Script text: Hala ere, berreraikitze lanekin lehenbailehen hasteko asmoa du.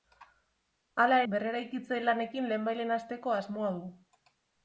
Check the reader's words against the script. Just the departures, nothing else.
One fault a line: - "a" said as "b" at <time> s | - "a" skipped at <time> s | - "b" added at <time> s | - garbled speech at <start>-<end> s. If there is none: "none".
- "ere" skipped at 1.2 s